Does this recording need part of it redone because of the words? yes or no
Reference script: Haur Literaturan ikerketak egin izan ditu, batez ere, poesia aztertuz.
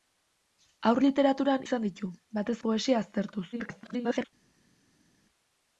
yes